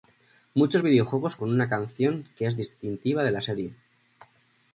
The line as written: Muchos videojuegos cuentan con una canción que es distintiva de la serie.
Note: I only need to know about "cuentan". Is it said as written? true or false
false